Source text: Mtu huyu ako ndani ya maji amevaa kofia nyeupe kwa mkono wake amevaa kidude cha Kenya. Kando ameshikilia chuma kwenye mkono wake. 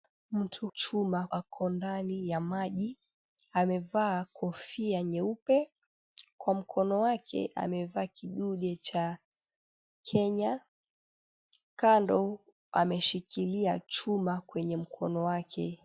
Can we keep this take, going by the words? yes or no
no